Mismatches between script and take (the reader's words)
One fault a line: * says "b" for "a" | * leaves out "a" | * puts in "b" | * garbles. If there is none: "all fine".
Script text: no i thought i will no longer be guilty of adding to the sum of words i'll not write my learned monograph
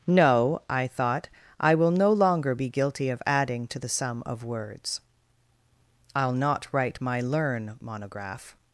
* says "learn" for "learned"